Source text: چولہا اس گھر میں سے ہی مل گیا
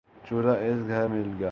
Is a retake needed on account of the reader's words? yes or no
yes